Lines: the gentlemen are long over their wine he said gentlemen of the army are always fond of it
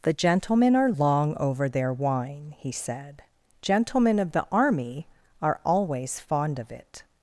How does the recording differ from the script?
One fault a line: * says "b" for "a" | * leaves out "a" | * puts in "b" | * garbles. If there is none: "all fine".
all fine